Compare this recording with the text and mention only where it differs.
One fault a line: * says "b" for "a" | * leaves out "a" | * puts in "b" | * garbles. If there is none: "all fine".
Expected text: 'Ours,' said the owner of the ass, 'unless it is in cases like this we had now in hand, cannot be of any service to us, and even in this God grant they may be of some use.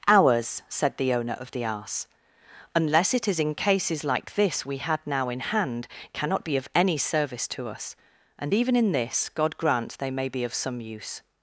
all fine